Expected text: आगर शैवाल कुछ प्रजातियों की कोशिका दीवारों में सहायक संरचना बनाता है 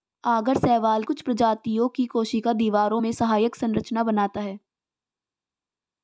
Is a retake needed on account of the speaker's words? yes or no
no